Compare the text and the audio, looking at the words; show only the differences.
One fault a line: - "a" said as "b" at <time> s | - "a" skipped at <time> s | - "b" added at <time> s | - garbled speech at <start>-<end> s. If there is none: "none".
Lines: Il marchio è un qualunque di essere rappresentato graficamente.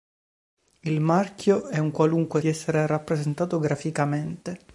none